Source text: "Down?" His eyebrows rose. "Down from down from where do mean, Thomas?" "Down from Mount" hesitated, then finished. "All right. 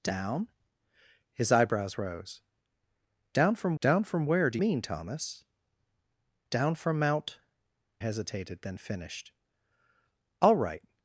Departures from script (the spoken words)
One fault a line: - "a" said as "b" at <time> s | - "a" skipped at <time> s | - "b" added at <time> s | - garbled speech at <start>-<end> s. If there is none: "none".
none